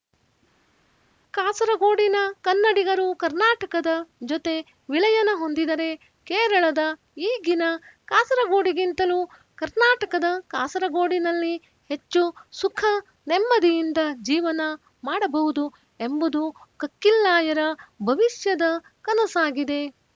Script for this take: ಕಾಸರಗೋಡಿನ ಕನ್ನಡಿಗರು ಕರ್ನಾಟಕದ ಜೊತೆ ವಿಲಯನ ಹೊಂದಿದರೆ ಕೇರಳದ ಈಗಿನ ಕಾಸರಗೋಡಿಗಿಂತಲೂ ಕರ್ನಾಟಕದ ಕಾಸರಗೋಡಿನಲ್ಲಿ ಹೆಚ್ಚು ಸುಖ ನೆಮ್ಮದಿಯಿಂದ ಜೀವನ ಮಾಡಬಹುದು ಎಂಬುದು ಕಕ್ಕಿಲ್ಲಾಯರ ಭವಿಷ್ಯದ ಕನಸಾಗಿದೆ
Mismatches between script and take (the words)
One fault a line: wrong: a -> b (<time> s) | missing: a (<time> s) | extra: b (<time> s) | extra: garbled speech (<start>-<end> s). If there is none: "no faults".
no faults